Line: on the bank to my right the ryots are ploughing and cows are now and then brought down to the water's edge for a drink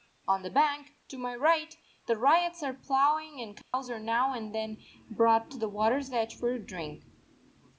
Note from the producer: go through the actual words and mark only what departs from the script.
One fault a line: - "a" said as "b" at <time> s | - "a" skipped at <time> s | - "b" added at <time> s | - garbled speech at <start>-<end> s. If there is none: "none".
- "down" skipped at 5.5 s